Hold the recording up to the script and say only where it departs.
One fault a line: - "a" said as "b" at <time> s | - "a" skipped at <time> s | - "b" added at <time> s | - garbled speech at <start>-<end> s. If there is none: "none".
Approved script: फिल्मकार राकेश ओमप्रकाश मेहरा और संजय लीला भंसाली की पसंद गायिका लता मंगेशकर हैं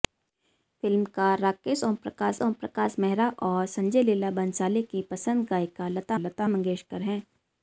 - "ओमप्रकाश" added at 2.4 s
- "लता" added at 6.2 s